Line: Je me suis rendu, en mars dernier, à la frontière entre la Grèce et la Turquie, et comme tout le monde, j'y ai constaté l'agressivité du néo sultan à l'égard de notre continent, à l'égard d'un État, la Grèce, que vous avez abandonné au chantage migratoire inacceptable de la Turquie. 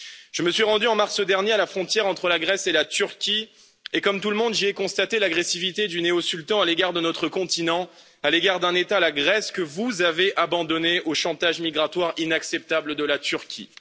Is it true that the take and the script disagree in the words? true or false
false